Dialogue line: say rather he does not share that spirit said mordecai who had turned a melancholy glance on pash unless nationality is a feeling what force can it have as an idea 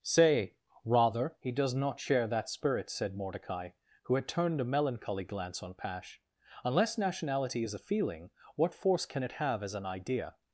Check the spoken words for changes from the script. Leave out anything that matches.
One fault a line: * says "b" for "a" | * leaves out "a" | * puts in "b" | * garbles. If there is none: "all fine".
all fine